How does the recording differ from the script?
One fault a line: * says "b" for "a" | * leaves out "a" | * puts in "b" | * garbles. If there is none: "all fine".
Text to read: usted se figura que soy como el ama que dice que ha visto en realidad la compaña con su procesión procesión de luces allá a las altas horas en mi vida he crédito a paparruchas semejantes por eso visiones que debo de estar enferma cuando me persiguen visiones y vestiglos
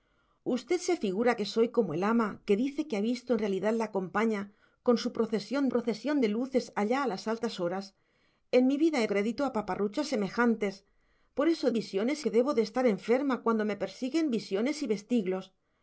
all fine